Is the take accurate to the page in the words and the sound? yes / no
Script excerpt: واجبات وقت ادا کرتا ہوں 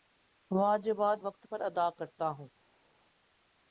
no